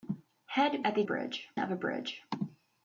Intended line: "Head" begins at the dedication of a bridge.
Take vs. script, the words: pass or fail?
fail